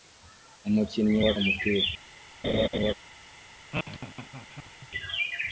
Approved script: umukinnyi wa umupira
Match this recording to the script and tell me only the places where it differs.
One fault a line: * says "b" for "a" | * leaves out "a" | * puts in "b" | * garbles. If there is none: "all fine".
all fine